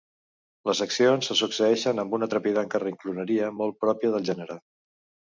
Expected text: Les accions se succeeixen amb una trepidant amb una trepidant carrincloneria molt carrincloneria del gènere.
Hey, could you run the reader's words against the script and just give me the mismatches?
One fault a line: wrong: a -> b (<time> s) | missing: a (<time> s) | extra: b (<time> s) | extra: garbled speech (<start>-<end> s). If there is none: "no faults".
missing: amb una trepidant (2.7 s)
wrong: carrincloneria -> pròpia (3.9 s)